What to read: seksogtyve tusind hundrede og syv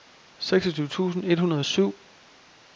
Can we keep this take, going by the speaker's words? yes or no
no